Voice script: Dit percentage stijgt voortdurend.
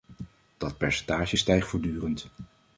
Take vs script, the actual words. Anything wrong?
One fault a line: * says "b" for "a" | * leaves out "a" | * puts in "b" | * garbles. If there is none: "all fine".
* says "Dat" for "Dit"